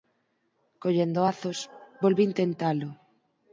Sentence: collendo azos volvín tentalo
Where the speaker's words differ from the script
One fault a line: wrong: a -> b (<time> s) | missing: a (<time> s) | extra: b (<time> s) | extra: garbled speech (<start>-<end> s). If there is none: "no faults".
no faults